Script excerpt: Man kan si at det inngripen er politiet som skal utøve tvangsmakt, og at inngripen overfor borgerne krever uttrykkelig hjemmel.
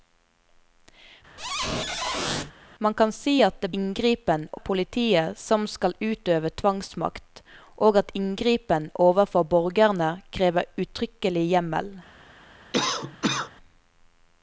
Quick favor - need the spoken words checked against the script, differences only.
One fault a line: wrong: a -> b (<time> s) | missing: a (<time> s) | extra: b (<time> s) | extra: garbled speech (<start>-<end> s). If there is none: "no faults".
no faults